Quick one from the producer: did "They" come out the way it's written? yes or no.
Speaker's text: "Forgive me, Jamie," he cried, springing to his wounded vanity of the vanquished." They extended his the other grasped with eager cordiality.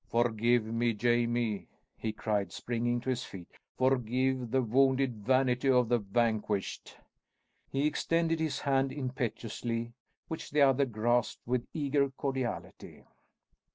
no